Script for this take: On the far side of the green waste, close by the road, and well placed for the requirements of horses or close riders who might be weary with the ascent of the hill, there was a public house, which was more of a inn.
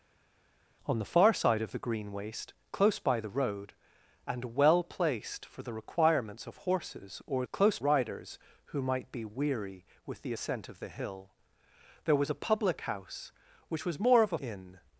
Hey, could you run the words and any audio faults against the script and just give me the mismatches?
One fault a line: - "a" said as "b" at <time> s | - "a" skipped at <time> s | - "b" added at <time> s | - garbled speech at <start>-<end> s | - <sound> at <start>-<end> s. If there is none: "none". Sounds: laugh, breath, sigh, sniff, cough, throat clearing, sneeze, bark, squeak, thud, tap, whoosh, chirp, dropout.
none